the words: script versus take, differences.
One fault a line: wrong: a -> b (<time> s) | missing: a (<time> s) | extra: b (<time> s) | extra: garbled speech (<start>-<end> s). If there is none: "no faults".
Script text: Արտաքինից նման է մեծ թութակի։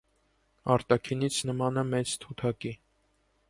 no faults